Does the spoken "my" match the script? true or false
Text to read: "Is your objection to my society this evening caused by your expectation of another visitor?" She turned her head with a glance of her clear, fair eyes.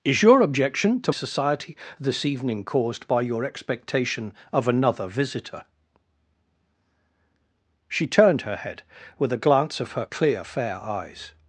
false